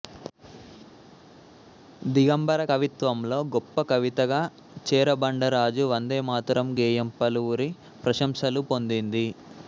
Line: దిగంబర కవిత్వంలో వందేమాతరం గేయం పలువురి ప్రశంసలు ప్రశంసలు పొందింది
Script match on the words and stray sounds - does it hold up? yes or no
no